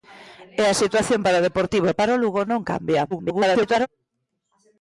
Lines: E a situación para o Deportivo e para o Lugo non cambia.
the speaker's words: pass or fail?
fail